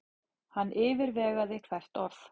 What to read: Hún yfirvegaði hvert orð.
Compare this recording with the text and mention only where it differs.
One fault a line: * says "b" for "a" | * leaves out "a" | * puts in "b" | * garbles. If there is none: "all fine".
* says "Hann" for "Hún"